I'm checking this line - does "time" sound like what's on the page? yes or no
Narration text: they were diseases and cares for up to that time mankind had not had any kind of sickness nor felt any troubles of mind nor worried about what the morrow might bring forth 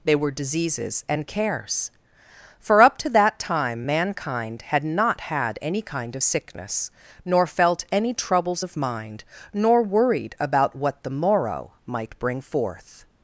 yes